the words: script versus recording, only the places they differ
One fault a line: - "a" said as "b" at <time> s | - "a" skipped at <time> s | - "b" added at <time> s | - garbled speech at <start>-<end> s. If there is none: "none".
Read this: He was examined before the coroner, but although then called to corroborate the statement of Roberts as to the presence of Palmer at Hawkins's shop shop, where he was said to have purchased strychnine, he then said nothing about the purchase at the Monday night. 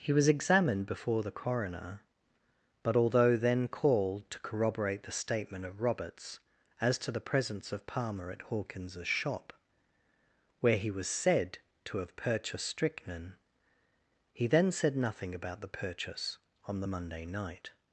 - "shop" skipped at 9.5 s
- "at" said as "on" at 16.6 s